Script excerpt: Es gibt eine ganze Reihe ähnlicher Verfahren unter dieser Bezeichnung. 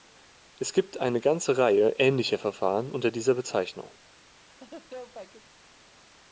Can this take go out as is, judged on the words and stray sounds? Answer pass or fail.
fail